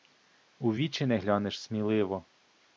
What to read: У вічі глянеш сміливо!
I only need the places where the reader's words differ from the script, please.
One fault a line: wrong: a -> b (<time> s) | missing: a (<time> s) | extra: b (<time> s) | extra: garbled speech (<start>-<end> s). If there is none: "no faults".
extra: не (1.0 s)